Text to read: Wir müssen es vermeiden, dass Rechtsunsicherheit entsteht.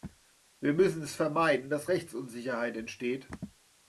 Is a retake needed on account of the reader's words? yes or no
no